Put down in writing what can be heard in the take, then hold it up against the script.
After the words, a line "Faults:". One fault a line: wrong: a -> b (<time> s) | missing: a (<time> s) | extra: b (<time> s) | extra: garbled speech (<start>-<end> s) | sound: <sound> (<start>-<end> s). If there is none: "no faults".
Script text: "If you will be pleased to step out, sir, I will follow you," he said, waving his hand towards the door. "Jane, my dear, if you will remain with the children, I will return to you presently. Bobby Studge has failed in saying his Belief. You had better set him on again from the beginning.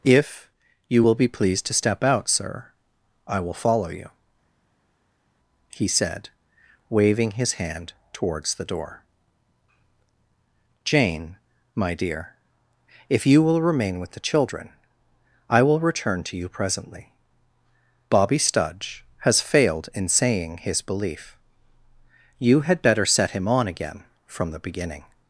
"If you will be pleased to step out, sir, I will follow you," he said, waving his hand towards the door. "Jane, my dear, if you will remain with the children, I will return to you presently. Bobby Studge has failed in saying his Belief. You had better set him on again from the beginning.
Faults:
no faults